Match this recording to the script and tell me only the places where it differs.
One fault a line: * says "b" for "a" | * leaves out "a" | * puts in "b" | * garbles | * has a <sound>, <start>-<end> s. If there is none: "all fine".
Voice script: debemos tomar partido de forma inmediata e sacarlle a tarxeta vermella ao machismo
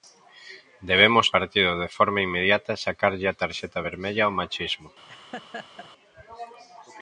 * leaves out "tomar"
* has a laugh, 5.1-5.9 s